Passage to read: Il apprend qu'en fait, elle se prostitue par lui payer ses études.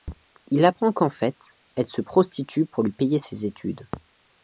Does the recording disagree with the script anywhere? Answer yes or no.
yes